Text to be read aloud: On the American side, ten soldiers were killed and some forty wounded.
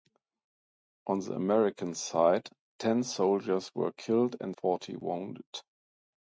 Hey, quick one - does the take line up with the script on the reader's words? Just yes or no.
no